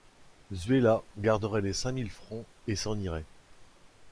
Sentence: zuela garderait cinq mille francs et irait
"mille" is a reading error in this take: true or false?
false